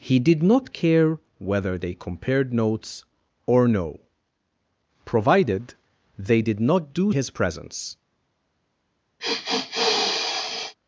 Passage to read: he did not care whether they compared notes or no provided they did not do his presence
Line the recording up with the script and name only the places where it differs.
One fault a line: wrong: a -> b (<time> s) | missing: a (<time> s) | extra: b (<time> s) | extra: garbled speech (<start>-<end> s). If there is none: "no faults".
no faults